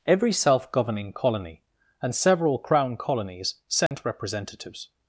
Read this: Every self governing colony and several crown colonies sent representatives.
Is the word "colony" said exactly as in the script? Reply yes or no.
yes